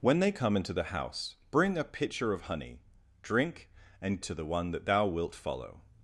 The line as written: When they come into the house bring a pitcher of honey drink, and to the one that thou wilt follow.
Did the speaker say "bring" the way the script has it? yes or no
yes